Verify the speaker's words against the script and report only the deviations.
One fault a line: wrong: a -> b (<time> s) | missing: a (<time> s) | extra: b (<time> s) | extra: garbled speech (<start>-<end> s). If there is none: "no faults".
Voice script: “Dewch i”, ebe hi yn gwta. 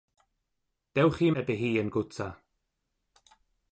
no faults